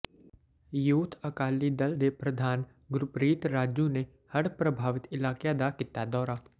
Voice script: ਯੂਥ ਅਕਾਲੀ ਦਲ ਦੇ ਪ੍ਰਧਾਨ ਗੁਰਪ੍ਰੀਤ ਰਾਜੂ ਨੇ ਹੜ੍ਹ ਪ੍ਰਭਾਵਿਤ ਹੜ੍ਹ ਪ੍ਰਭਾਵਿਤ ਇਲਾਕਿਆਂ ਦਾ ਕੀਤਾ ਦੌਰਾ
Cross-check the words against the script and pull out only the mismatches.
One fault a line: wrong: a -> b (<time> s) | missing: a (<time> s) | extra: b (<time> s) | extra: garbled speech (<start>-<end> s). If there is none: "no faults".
missing: ਹੜ੍ਹ ਪ੍ਰਭਾਵਿਤ (5.1 s)